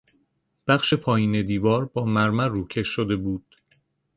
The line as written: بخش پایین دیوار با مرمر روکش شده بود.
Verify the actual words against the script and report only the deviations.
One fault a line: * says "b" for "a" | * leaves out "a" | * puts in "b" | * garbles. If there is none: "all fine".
all fine